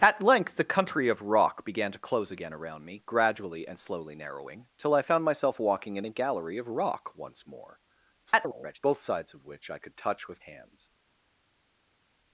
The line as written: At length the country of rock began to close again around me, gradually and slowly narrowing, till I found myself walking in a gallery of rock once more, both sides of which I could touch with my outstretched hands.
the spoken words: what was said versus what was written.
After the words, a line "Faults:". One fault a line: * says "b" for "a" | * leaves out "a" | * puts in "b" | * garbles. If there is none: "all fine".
At length the country of rock began to close again around me, gradually and slowly narrowing, till I found myself walking in a gallery of rock once more, [garbled] both sides of which I could touch with hands.
Faults:
* garbles
* leaves out "my outstretched"